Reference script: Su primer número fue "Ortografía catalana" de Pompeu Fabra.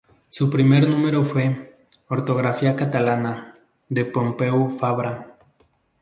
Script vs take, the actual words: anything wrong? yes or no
no